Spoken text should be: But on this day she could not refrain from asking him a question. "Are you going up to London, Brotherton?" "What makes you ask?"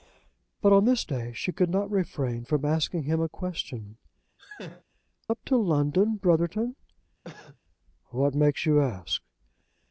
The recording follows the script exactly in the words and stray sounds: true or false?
false